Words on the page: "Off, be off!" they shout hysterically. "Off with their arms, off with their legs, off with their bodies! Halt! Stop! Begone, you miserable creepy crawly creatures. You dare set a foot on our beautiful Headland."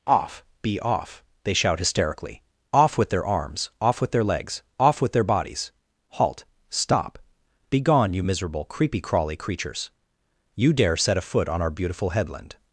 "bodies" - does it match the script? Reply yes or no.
yes